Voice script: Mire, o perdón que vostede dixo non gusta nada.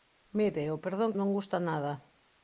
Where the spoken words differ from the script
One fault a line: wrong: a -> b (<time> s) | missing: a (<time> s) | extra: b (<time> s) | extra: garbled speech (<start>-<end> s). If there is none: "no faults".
missing: que vostede dixo (1.1 s)